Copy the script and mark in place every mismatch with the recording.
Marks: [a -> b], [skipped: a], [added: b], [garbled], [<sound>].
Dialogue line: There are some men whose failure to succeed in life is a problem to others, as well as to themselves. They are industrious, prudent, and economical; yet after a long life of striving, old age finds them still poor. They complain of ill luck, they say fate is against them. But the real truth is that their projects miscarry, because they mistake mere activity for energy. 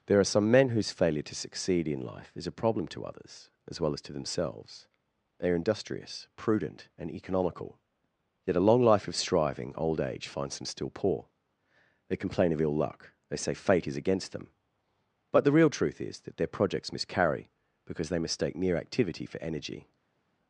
There are some men whose failure to succeed in life is a problem to others, as well as to themselves. They are industrious, prudent, and economical; yet [skipped: after] a long life of striving, old age finds them still poor. They complain of ill luck, they say fate is against them. But the real truth is that their projects miscarry, because they mistake mere activity for energy.